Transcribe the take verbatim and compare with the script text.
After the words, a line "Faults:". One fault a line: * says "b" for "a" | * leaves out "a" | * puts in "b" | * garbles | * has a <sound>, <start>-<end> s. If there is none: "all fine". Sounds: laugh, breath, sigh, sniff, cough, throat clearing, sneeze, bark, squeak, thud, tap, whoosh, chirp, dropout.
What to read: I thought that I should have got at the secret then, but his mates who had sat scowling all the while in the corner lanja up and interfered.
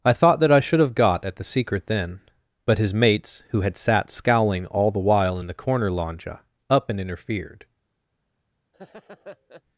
I thought that I should have got at the secret then, but his mates who had sat scowling all the while in the corner lanja up and interfered.
Faults:
* has a laugh, 8.7-9.6 s